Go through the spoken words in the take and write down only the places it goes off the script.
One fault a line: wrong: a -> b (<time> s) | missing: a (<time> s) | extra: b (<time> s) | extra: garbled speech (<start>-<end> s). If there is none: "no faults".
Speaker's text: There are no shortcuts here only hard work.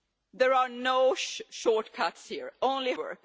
missing: hard (2.9 s)